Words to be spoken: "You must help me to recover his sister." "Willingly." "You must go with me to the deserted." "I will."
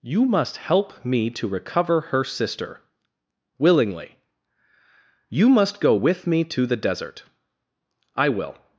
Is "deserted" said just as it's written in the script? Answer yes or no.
no